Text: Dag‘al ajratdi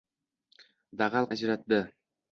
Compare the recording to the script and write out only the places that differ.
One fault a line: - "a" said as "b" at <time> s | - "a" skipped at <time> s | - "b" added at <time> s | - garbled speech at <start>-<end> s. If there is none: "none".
none